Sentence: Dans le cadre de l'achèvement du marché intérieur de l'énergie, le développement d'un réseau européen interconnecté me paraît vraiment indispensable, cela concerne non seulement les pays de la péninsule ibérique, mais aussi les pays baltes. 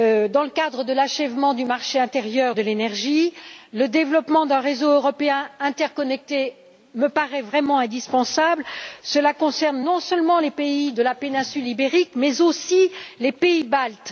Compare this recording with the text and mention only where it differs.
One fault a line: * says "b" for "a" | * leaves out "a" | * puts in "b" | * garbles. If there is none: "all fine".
all fine